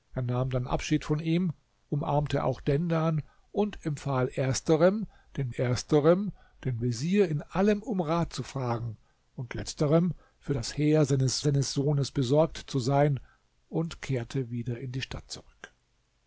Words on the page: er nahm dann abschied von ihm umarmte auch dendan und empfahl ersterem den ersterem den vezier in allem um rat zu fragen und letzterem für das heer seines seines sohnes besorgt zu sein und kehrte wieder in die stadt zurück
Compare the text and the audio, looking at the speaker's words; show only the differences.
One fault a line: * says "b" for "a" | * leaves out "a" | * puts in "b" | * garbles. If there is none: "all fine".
all fine